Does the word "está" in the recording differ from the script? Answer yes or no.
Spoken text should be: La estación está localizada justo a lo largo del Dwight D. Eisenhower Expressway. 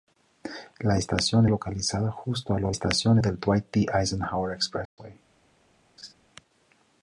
yes